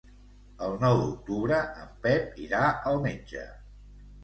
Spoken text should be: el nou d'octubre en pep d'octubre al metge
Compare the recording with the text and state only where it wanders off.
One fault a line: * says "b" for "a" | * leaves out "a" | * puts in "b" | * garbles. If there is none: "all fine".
* says "irà" for "d'octubre"